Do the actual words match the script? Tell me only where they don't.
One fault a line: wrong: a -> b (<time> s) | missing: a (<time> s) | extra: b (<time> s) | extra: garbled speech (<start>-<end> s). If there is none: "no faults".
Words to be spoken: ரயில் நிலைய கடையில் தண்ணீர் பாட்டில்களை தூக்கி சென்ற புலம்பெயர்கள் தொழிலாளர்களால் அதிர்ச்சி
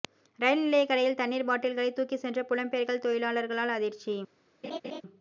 no faults